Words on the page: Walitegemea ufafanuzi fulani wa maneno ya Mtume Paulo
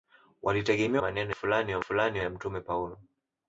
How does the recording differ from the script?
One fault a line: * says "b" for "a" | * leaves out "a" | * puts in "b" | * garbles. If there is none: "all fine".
* says "maneno" for "ufafanuzi"
* says "fulani" for "maneno"